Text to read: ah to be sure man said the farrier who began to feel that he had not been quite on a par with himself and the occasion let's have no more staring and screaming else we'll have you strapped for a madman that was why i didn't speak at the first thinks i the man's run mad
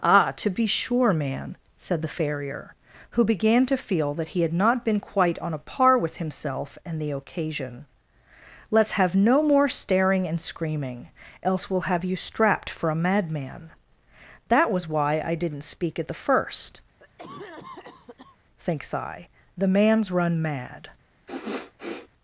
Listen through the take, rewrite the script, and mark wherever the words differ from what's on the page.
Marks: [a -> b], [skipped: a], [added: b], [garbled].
ah to be sure man said the farrier who began to feel that he had not been quite on a par with himself and the occasion let's have no more staring and screaming else we'll have you strapped for a madman that was why i didn't speak at the first thinks i the man's run mad